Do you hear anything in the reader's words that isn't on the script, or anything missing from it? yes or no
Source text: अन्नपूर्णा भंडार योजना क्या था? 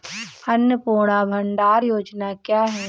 yes